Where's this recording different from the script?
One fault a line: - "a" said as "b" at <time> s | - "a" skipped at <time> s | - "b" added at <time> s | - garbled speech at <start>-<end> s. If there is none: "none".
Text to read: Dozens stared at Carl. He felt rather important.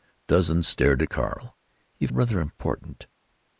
- "felt" skipped at 2.1 s